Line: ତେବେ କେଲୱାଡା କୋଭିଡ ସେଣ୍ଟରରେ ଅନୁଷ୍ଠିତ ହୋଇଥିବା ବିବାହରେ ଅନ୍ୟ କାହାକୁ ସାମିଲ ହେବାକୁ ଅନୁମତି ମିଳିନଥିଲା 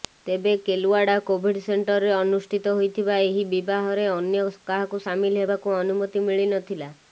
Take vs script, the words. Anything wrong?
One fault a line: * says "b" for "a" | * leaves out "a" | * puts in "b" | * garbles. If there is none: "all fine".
* puts in "ଏହି"